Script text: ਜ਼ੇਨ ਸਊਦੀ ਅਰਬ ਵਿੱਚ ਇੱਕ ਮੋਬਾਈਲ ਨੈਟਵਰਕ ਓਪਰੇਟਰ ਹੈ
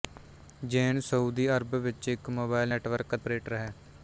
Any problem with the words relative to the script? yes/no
no